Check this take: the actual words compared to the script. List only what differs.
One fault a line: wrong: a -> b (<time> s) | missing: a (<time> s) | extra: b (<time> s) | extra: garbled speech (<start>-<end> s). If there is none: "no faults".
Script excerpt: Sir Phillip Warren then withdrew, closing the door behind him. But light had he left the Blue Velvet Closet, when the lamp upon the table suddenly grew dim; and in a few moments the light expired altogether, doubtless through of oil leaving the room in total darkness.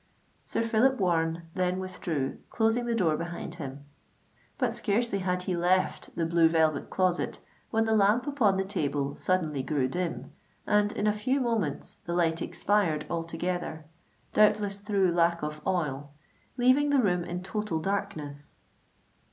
wrong: light -> scarcely (4.7 s)
extra: lack (15.1 s)